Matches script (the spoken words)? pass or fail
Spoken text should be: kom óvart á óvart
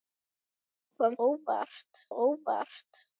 pass